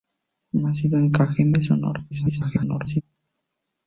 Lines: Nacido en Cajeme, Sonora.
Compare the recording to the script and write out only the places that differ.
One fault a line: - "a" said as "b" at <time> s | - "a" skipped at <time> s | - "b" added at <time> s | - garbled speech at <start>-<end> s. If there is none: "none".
- garbled speech at 2.1-3.0 s